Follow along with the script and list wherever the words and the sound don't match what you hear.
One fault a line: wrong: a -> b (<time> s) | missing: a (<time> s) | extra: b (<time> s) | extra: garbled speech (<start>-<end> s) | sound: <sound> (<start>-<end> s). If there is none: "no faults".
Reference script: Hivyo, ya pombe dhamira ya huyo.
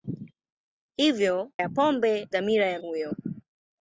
no faults